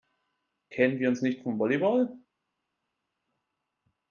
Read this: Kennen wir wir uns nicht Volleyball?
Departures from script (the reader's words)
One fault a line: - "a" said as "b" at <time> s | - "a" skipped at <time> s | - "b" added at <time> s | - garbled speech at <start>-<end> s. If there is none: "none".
- "wir" skipped at 1.1 s
- "vom" added at 1.4 s